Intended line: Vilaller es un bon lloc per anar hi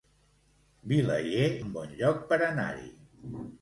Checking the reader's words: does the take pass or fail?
fail